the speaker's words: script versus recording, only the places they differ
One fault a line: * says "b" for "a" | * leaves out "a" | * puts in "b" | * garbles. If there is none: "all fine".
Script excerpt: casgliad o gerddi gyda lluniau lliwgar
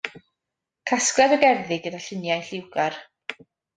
all fine